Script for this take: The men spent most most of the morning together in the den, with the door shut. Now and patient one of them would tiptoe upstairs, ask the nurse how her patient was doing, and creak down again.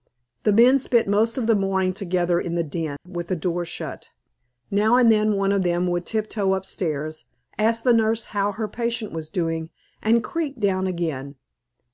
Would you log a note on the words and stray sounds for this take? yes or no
yes